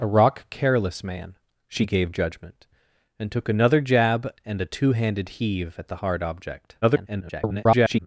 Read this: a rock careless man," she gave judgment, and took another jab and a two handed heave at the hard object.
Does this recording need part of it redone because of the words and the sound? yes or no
yes